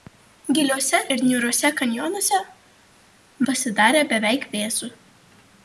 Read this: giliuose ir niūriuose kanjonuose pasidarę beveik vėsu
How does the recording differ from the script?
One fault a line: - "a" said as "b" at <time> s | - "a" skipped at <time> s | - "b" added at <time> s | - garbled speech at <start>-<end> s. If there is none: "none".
none